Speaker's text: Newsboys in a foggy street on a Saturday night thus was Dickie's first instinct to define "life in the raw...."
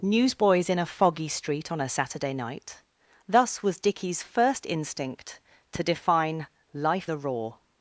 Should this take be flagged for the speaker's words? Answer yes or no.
yes